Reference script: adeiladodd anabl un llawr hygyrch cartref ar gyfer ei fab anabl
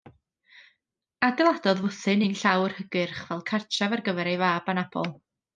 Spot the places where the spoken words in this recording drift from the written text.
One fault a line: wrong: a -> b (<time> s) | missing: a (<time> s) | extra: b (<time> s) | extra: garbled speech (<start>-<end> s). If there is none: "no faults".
wrong: anabl -> fwthyn (1.9 s)
extra: fel (3.3 s)